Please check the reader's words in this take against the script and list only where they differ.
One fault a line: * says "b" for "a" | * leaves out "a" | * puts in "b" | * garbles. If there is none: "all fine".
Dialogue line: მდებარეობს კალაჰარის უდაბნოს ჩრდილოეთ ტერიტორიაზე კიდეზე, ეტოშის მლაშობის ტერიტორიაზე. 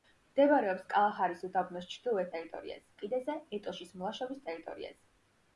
all fine